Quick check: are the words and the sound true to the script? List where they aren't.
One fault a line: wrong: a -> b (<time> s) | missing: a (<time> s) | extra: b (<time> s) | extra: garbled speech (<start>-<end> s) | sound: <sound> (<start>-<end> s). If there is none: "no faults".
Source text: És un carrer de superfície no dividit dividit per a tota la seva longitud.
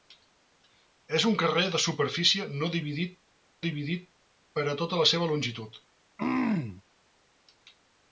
sound: throat clearing (6.2-6.8 s)